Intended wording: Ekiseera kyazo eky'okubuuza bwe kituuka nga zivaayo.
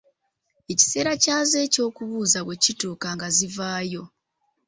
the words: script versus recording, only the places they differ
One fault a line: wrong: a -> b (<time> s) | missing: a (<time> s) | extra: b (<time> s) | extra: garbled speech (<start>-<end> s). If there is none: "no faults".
no faults